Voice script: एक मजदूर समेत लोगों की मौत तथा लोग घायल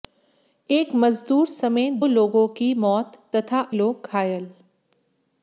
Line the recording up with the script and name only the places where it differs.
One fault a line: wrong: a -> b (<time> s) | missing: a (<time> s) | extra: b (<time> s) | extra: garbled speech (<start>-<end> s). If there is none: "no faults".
no faults